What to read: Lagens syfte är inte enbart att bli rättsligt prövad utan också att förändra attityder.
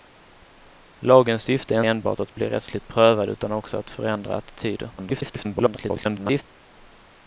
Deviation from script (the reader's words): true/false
true